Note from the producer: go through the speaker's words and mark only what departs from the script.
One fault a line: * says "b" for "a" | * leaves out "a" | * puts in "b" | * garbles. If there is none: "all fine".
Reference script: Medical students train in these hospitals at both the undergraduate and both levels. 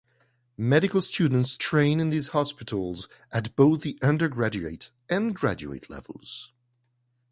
* says "graduate" for "both"